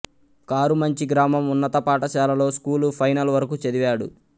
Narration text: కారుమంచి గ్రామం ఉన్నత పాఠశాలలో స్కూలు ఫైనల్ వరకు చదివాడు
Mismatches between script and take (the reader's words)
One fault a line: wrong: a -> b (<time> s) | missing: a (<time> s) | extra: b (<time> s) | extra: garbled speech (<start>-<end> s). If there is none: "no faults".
no faults